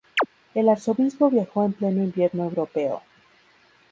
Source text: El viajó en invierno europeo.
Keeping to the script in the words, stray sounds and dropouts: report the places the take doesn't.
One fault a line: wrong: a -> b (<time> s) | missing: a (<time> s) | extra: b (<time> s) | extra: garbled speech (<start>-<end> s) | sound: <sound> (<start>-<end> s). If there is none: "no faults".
sound: chirp (0.2-0.3 s)
extra: arzobispo (0.7 s)
extra: pleno (1.7 s)